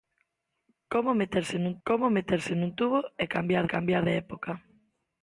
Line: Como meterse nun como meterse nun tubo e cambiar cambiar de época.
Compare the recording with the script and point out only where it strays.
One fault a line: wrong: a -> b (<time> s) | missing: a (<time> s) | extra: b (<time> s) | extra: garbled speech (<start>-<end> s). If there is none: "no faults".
no faults